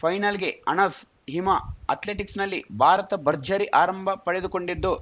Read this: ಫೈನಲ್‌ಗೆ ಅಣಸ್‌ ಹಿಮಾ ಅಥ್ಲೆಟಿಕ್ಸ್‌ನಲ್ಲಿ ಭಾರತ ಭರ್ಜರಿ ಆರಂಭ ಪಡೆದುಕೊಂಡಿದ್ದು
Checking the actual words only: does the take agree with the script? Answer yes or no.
yes